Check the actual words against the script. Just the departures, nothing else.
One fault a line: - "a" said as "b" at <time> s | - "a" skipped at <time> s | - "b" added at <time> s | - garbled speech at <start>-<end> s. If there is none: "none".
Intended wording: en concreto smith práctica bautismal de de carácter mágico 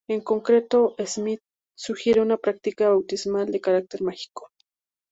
- "sugiere una" added at 1.8 s
- "de" skipped at 3.6 s